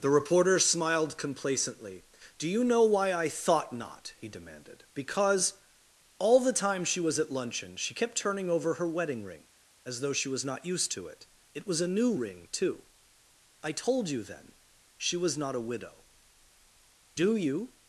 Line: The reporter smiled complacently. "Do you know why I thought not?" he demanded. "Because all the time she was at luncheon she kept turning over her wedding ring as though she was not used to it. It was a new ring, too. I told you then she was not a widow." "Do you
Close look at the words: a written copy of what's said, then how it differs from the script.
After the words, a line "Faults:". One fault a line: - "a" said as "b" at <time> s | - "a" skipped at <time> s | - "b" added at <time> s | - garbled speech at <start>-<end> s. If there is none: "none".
The reporter smiled complacently. "Do you know why I thought not?" he demanded. "Because all the time she was at luncheon she kept turning over her wedding ring as though she was not used to it. It was a new ring, too. I told you then she was not a widow." "Do you
Faults:
none